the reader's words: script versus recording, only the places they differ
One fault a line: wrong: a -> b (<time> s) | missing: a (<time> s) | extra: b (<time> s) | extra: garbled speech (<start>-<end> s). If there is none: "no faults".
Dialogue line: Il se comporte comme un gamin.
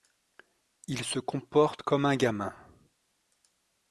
no faults